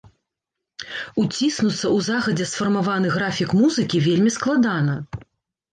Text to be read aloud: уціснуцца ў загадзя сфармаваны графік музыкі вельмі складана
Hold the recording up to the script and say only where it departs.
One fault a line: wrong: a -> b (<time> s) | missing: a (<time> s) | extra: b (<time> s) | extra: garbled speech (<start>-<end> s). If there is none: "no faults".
no faults